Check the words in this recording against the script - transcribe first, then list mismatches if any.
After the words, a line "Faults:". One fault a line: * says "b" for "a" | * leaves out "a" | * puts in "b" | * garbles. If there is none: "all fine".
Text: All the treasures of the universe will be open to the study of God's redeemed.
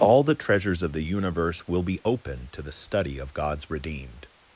All the treasures of the universe will be open to the study of God's redeemed.
Faults:
all fine